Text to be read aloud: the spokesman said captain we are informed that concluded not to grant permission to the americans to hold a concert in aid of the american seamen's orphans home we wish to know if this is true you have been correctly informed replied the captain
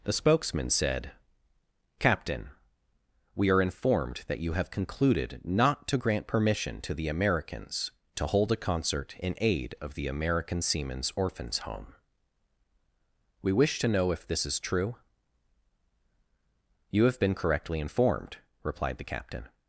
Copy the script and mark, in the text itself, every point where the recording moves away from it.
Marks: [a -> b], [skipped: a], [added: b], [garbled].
the spokesman said captain we are informed that [added: you have] concluded not to grant permission to the americans to hold a concert in aid of the american seamen's orphans home we wish to know if this is true you have been correctly informed replied the captain